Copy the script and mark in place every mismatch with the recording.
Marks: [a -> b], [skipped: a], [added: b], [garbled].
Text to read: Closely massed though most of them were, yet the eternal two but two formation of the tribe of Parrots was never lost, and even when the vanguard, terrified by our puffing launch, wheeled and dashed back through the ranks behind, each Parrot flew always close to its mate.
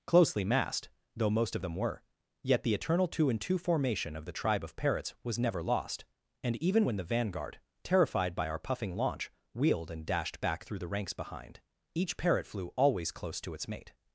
Closely massed though most of them were, yet the eternal two [but -> and] two formation of the tribe of Parrots was never lost, and even when the vanguard, terrified by our puffing launch, wheeled and dashed back through the ranks behind, each Parrot flew always close to its mate.